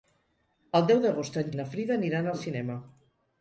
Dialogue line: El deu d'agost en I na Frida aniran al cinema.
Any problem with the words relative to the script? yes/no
no